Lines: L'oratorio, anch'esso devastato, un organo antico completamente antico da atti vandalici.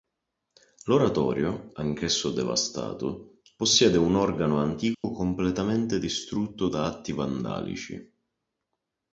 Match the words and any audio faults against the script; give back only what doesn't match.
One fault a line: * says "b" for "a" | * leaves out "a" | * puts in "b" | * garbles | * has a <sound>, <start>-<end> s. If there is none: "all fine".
* puts in "possiede"
* has a dropout, 4.9-5.0 s
* says "distrutto" for "antico"